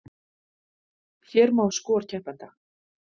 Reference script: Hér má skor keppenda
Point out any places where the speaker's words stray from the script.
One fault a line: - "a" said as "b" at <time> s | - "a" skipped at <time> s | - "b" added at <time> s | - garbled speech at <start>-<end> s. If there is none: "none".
none